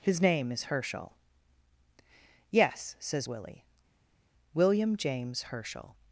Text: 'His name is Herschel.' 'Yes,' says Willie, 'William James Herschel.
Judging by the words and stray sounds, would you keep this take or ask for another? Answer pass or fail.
pass